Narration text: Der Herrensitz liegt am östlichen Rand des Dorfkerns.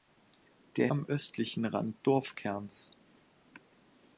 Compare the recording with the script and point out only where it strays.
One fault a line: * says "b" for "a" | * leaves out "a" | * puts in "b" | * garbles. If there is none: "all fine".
* leaves out "Herrensitz liegt"
* leaves out "des"